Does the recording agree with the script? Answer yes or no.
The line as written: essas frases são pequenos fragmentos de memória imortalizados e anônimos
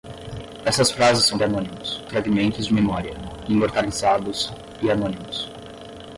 no